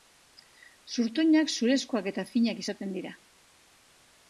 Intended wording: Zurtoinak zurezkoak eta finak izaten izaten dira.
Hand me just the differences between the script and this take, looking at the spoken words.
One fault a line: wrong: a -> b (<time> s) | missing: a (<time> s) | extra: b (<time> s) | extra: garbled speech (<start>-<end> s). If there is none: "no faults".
missing: izaten (3.0 s)